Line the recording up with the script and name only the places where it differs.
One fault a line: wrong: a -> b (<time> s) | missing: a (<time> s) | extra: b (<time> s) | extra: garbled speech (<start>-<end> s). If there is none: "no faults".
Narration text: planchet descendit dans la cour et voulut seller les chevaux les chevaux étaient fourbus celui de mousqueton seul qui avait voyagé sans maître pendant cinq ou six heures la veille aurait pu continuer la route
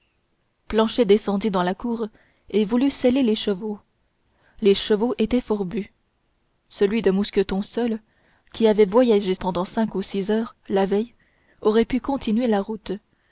missing: sans maître (9.3 s)